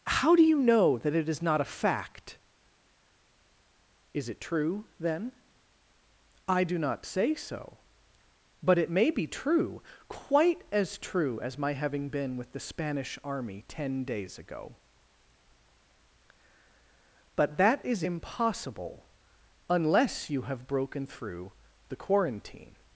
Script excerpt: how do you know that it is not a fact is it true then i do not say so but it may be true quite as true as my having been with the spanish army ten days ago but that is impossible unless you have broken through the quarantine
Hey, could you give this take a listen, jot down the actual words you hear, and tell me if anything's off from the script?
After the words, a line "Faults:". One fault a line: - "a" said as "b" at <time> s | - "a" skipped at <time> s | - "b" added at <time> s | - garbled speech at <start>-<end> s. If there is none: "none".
how do you know that it is not a fact is it true then i do not say so but it may be true quite as true as my having been with the spanish army ten days ago but that is impossible unless you have broken through the quarantine
Faults:
none